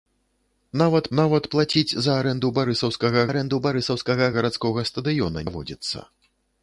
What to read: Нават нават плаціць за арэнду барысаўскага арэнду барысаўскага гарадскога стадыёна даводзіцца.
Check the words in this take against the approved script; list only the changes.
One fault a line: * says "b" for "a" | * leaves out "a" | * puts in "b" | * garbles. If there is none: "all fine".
all fine